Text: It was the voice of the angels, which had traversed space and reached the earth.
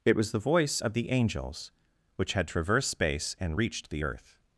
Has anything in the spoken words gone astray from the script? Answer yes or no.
no